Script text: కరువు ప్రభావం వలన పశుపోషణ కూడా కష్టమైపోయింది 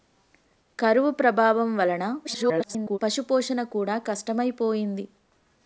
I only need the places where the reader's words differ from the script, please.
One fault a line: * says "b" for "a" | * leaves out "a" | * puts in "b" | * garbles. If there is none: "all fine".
* garbles